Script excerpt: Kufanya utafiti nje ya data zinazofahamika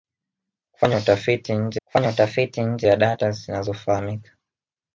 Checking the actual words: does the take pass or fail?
fail